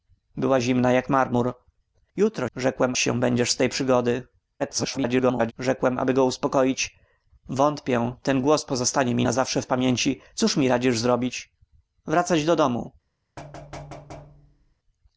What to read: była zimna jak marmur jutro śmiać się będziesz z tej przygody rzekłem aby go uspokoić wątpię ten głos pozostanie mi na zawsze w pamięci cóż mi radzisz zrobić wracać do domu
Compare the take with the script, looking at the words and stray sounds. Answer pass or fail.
fail